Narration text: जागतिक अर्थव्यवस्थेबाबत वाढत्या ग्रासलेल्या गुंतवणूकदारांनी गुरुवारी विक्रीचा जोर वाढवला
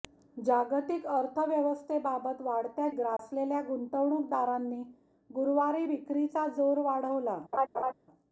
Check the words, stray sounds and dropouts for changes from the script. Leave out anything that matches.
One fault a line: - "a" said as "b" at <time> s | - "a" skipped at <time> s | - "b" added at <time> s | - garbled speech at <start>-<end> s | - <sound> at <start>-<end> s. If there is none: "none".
- dropout at 3.2-3.2 s
- laugh at 7.5-7.9 s